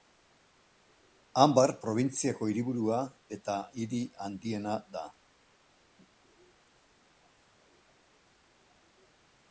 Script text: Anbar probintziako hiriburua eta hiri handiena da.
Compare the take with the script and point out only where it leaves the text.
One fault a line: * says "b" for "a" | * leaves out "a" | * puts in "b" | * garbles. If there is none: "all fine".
all fine